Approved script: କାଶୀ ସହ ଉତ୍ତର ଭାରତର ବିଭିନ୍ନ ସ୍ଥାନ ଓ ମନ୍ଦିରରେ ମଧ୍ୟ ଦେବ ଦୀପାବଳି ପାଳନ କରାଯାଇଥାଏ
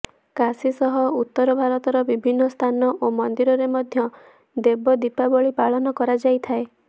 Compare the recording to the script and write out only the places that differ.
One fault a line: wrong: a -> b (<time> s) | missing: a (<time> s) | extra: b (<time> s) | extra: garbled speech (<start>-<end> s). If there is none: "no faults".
no faults